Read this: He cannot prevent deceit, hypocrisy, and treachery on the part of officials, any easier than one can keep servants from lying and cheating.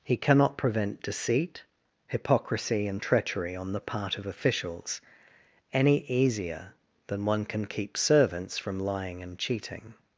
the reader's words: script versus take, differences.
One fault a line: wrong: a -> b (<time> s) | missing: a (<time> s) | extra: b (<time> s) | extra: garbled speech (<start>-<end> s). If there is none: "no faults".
no faults